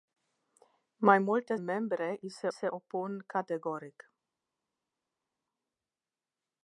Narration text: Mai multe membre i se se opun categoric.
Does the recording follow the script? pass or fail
pass